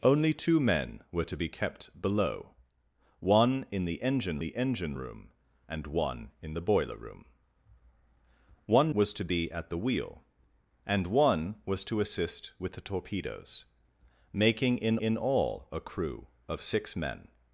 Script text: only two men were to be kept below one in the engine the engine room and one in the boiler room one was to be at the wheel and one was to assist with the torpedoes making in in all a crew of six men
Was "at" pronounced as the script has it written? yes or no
yes